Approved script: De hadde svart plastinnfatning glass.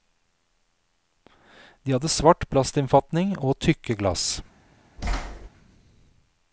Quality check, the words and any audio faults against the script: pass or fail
fail